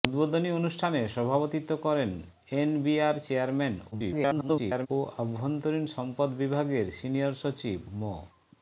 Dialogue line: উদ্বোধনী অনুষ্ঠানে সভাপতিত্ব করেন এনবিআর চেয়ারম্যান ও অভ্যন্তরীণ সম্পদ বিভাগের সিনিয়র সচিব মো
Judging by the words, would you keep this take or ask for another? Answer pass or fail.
fail